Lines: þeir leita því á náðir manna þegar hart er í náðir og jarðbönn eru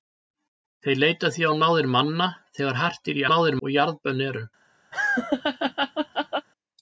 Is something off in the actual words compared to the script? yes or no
no